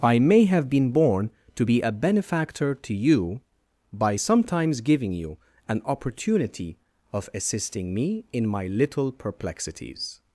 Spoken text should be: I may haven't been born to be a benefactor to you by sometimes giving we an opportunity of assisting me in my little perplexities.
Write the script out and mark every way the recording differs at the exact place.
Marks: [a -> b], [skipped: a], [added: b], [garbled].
I may [haven't -> have] been born to be a benefactor to you by sometimes giving [we -> you] an opportunity of assisting me in my little perplexities.